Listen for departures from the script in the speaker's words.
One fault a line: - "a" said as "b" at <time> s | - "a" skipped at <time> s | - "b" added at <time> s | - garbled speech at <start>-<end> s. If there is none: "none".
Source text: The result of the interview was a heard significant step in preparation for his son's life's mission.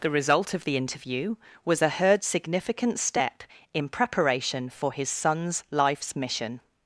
none